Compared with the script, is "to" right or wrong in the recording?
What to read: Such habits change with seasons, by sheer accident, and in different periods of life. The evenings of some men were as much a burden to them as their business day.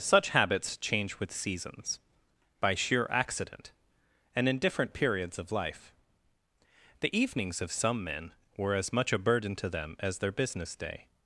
right